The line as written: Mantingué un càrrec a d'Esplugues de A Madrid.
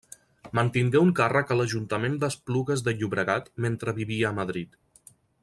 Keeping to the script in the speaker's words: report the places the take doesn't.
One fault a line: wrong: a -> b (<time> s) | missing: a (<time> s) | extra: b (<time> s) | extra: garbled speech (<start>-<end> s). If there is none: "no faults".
extra: l'Ajuntament (1.6 s)
extra: Llobregat mentre vivia (3.0 s)